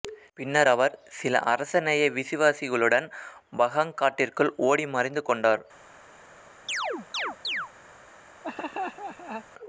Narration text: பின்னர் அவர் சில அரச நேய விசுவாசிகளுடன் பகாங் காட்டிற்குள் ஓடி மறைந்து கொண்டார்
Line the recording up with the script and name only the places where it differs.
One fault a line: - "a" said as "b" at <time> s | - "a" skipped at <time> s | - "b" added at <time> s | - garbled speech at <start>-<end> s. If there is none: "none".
none